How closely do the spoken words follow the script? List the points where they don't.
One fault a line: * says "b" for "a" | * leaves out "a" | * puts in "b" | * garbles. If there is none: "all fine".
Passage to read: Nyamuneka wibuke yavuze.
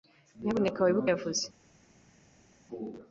all fine